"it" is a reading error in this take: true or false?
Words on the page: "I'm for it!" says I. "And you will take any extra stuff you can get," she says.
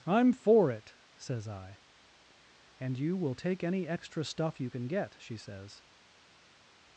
false